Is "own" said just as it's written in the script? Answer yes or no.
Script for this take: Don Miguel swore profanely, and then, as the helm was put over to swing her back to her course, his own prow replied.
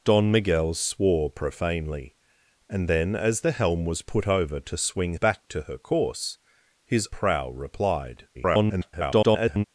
no